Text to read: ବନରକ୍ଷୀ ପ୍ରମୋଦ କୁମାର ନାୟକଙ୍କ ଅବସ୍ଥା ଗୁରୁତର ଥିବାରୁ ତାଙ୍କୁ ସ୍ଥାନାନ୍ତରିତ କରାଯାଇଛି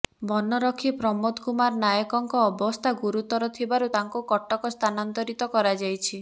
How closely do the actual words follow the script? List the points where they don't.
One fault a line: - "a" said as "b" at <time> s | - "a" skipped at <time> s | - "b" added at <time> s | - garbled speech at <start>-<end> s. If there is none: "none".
- "କଟକ" added at 4.3 s